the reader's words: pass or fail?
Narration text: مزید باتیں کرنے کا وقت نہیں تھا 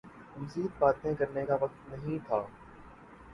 pass